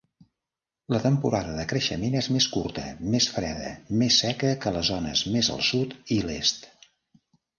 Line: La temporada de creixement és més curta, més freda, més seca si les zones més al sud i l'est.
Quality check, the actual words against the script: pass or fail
fail